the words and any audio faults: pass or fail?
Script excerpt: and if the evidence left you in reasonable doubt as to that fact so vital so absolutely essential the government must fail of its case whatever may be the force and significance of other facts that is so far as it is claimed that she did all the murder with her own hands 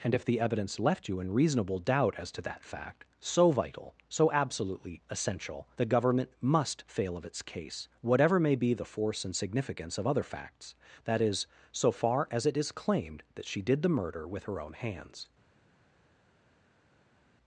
fail